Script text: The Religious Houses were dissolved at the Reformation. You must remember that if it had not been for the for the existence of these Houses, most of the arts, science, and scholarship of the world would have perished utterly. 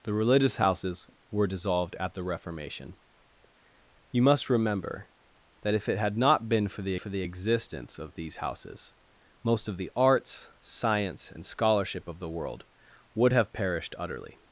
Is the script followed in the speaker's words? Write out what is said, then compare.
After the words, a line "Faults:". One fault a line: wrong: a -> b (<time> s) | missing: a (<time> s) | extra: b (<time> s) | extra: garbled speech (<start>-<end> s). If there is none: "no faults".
The Religious Houses were dissolved at the Reformation. You must remember that if it had not been for the for the existence of these Houses, most of the arts, science, and scholarship of the world would have perished utterly.
Faults:
no faults